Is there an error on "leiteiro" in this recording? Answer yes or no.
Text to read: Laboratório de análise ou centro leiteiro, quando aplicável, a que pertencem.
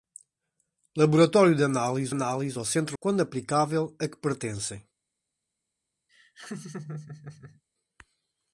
yes